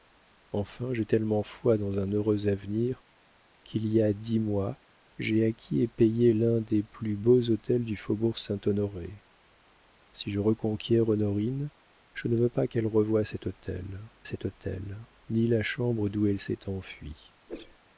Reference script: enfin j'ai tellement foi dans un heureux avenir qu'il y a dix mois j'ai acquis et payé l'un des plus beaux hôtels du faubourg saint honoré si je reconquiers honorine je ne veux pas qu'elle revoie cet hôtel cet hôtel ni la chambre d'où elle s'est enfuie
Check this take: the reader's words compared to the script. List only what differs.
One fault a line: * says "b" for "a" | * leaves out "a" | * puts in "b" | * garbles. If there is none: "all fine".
all fine